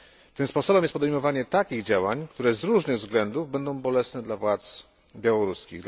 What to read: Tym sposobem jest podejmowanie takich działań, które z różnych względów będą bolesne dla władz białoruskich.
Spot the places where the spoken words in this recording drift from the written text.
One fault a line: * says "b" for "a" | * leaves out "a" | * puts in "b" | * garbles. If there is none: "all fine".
all fine